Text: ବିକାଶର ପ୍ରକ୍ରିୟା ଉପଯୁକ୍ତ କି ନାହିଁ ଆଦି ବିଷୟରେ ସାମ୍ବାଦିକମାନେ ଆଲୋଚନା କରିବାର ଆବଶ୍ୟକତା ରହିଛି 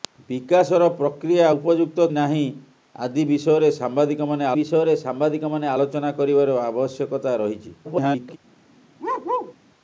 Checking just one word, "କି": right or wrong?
wrong